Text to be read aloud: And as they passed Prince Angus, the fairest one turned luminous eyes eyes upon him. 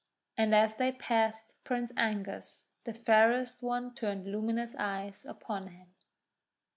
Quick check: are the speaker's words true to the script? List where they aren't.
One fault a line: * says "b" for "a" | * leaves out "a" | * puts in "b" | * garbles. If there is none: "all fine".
* leaves out "eyes"